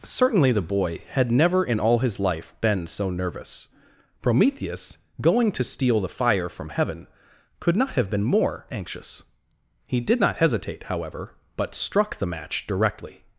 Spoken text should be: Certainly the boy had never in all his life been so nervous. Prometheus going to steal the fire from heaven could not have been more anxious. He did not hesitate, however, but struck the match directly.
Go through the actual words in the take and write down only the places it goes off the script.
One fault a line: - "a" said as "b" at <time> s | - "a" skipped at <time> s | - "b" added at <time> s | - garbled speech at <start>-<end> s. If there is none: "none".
none